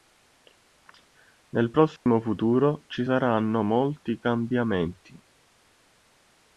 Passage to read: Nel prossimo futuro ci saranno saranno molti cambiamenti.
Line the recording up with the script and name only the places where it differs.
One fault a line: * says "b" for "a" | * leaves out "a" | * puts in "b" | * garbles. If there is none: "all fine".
* leaves out "saranno"